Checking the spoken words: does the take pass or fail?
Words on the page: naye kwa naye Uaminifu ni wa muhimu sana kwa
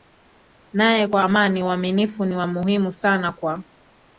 fail